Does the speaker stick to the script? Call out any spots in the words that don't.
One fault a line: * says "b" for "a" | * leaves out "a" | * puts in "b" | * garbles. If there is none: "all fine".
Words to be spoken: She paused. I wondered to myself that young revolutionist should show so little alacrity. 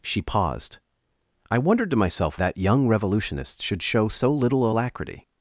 all fine